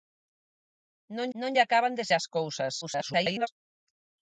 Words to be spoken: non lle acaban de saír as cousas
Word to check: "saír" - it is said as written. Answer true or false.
false